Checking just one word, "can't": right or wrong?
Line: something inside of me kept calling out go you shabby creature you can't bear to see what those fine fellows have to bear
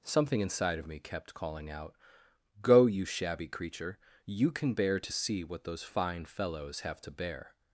wrong